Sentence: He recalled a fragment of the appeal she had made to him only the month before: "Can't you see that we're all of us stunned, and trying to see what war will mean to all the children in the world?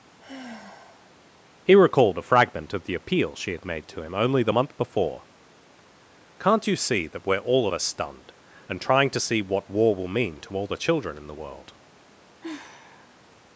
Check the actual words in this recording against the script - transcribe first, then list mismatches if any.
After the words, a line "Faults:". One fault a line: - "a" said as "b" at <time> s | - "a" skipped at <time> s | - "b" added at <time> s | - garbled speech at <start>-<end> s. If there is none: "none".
He recalled a fragment of the appeal she had made to him only the month before: "Can't you see that we're all of us stunned, and trying to see what war will mean to all the children in the world?
Faults:
none